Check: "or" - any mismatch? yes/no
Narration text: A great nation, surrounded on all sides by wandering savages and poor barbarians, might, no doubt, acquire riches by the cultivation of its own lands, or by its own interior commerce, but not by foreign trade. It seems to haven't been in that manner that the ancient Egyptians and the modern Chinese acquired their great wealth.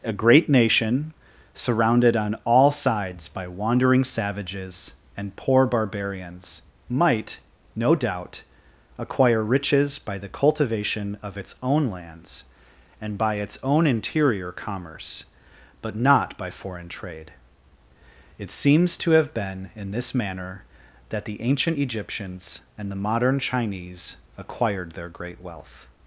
yes